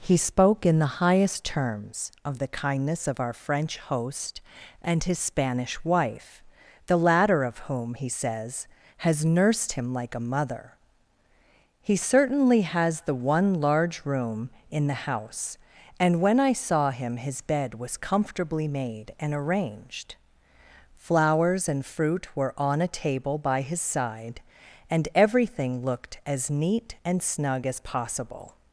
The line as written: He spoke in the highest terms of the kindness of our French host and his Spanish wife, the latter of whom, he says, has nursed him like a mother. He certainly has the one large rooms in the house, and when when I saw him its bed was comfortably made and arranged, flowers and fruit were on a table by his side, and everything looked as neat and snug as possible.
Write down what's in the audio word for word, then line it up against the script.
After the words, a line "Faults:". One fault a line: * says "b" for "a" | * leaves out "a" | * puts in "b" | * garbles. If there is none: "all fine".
He spoke in the highest terms of the kindness of our French host and his Spanish wife, the latter of whom, he says, has nursed him like a mother. He certainly has the one large room in the house, and when I saw him his bed was comfortably made and arranged, flowers and fruit were on a table by his side, and everything looked as neat and snug as possible.
Faults:
* says "room" for "rooms"
* leaves out "when"
* says "his" for "its"